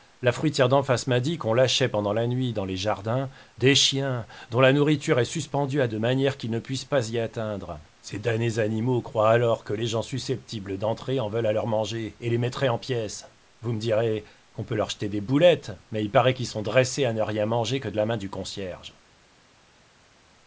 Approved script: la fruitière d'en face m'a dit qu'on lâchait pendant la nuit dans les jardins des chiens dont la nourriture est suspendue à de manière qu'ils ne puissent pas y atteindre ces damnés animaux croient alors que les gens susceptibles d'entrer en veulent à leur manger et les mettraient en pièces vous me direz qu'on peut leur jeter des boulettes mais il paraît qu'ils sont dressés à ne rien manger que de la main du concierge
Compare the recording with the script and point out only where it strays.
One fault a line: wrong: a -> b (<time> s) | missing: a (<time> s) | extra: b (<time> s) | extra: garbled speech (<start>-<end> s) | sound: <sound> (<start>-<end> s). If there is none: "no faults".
no faults